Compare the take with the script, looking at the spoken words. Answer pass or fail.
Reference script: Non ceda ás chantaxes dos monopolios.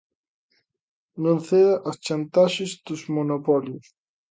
pass